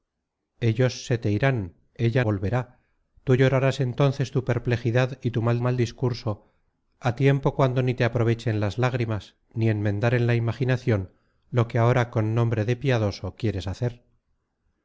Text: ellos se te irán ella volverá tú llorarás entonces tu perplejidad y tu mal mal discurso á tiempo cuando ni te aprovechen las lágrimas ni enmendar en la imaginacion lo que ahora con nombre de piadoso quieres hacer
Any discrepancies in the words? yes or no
no